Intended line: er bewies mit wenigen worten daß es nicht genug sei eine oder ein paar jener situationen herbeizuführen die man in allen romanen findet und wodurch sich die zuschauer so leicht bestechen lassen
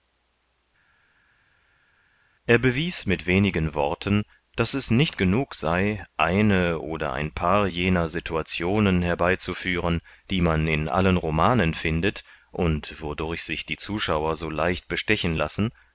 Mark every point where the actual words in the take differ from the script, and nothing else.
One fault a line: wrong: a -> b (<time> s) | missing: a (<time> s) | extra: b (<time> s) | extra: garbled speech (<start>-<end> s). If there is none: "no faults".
no faults